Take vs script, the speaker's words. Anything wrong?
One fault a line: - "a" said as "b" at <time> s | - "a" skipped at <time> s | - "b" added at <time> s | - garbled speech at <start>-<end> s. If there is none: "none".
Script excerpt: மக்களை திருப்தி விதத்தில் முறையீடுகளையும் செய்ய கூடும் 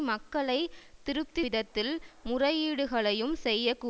none